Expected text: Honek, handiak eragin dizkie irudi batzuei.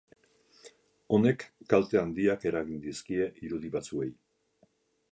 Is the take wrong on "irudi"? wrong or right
right